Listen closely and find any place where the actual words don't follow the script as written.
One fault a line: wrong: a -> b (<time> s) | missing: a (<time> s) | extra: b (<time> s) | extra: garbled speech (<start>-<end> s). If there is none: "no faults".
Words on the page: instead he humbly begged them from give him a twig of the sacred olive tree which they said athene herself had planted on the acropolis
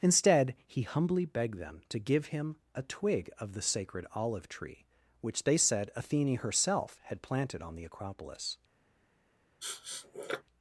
wrong: from -> to (1.9 s)